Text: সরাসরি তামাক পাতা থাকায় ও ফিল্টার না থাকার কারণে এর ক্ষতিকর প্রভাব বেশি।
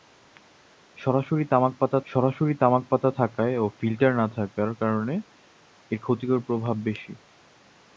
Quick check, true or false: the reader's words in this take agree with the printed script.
false